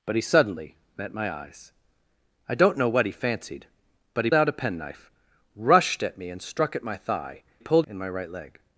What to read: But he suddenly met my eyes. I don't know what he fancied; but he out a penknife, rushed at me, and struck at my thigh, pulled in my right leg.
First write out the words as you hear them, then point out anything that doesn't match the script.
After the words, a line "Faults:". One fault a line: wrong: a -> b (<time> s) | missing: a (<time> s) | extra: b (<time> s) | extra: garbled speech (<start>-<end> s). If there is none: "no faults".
But he suddenly met my eyes. I don't know what he fancied; but he out a penknife, rushed at me, and struck at my thigh, pulled in my right leg.
Faults:
no faults